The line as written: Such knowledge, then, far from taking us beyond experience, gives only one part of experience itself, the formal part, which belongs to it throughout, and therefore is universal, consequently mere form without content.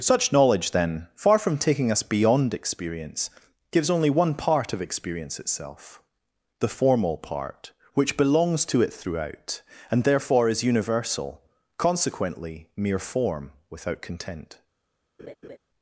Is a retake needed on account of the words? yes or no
no